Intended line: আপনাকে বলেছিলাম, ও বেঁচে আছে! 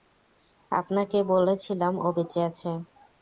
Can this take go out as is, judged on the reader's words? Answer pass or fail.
pass